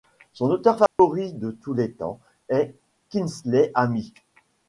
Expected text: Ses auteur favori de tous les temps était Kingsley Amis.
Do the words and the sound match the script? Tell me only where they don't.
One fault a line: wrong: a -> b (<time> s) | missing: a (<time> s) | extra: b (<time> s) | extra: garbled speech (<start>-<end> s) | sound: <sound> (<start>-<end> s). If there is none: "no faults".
wrong: Ses -> Son (0.3 s)
sound: dropout (0.9-1.0 s)
wrong: était -> est (2.5 s)